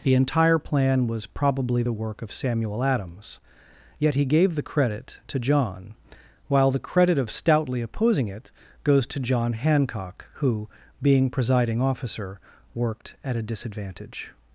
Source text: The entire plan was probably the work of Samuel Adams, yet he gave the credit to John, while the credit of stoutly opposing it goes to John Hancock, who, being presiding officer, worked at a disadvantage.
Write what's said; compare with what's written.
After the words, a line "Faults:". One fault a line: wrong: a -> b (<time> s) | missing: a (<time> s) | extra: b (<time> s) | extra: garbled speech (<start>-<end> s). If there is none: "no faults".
The entire plan was probably the work of Samuel Adams, yet he gave the credit to John, while the credit of stoutly opposing it goes to John Hancock, who, being presiding officer, worked at a disadvantage.
Faults:
no faults